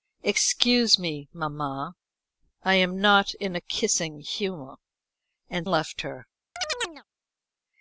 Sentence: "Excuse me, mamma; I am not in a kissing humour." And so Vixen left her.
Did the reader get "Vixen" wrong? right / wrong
wrong